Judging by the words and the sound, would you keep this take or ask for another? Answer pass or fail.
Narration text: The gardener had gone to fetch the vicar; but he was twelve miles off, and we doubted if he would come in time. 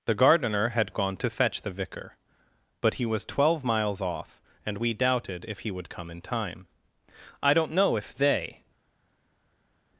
fail